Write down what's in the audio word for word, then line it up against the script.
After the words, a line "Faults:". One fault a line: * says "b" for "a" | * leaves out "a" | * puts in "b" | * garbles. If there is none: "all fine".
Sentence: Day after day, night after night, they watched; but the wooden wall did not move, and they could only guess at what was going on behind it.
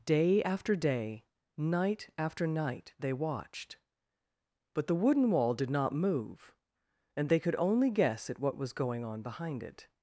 Day after day, night after night, they watched; but the wooden wall did not move, and they could only guess at what was going on behind it.
Faults:
all fine